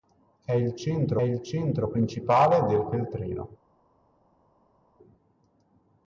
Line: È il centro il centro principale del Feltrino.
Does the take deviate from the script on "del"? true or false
false